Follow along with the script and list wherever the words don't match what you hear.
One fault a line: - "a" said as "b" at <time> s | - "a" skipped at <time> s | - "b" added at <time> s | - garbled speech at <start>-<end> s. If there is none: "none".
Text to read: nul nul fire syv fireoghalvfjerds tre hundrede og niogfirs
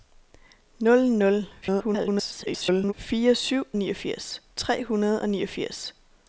- garbled speech at 1.6-2.9 s
- "fireoghalvfjerds" said as "niogfirs" at 3.8 s